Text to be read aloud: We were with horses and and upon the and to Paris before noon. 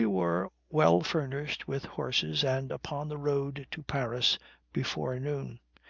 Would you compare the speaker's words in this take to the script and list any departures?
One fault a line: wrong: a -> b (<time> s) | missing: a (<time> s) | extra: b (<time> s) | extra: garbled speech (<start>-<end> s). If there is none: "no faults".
extra: well furnished (0.7 s)
missing: and (2.7 s)
wrong: and -> road (3.2 s)